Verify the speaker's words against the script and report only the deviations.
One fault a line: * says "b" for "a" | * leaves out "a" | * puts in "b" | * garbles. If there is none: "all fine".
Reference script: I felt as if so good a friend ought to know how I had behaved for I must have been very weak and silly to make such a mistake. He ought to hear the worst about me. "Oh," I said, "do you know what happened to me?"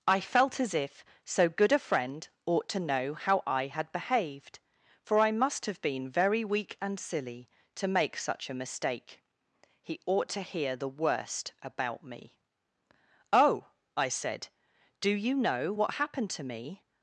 all fine